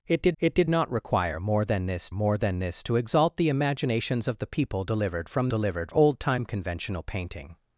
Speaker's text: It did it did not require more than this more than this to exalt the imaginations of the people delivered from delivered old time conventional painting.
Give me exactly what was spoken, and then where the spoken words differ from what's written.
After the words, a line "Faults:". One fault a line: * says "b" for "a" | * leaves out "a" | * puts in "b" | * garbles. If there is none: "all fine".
It did it did not require more than this more than this to exalt the imaginations of the people delivered from delivered old time conventional painting.
Faults:
all fine